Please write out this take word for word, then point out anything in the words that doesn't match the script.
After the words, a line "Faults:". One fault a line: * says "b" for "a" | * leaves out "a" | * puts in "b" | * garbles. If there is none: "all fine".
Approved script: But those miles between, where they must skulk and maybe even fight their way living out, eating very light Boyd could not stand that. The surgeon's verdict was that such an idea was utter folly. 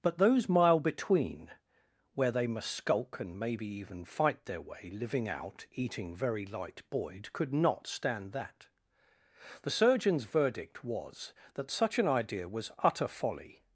But those mile between, where they must skulk and maybe even fight their way living out, eating very light Boyd could not stand that. The surgeon's verdict was that such an idea was utter folly.
Faults:
* says "mile" for "miles"